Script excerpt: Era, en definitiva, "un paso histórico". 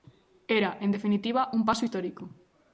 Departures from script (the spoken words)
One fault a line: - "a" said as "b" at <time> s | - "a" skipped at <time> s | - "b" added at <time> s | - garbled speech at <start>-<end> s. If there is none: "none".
none